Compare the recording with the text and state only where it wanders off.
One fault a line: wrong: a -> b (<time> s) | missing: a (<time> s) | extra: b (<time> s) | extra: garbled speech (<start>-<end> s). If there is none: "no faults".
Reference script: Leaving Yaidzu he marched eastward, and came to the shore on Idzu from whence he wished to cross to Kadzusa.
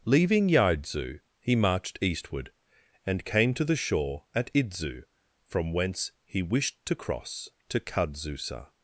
wrong: on -> at (4.3 s)